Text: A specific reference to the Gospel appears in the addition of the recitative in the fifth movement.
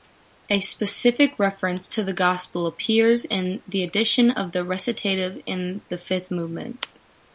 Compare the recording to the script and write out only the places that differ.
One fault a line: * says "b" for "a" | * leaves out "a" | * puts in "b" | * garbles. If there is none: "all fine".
all fine